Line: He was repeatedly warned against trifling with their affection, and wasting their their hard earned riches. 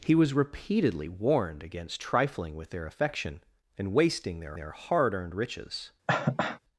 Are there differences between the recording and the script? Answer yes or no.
no